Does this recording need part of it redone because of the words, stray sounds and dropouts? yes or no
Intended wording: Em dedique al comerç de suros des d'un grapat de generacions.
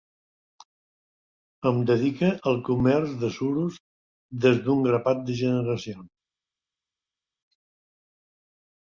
no